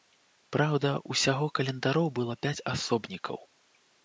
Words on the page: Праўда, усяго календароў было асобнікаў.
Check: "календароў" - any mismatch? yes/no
no